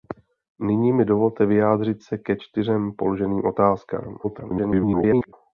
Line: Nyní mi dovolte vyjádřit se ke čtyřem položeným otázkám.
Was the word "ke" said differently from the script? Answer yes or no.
no